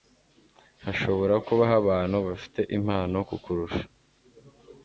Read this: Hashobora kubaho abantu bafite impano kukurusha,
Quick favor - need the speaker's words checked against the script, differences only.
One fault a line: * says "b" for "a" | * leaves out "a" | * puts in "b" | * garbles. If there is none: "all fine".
all fine